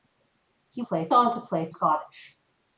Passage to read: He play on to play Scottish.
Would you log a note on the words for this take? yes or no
no